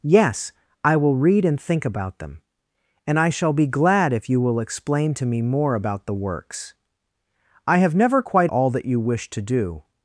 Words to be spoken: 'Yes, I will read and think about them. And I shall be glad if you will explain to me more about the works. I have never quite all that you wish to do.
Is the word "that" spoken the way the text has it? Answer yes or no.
yes